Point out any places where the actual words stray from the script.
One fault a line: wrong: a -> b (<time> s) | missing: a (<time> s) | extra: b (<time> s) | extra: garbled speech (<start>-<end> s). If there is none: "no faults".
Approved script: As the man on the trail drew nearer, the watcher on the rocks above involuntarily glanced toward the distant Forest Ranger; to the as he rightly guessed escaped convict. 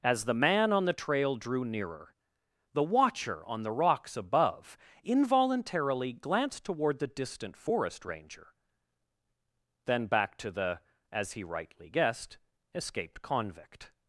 extra: then back (9.8 s)